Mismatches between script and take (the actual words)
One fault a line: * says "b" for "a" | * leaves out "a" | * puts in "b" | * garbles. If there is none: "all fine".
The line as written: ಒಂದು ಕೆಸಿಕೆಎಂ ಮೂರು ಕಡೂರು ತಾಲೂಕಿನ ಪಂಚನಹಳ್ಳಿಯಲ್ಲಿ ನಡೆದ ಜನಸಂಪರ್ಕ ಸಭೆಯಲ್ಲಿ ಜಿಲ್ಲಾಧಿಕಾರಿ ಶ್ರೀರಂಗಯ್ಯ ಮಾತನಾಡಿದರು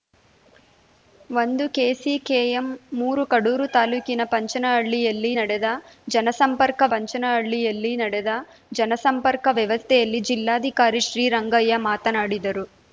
* puts in "ಪಂಚನಹಳ್ಳಿಯಲ್ಲಿ ನಡೆದ ಜನಸಂಪರ್ಕ"